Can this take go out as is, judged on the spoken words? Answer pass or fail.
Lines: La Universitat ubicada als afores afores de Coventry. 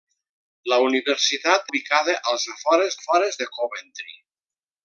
pass